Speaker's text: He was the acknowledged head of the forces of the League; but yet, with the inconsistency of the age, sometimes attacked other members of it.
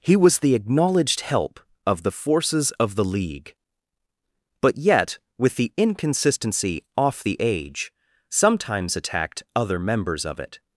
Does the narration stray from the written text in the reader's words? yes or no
yes